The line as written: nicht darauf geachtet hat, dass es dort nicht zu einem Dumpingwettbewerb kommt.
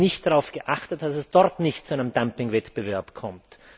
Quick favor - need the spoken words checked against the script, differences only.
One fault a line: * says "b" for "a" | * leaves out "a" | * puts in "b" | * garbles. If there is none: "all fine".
all fine